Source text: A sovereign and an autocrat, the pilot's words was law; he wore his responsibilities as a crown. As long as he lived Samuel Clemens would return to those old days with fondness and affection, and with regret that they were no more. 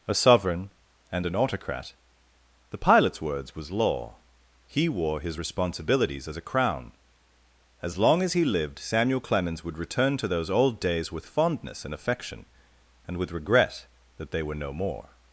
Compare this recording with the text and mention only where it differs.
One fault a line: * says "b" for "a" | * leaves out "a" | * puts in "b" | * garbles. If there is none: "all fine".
all fine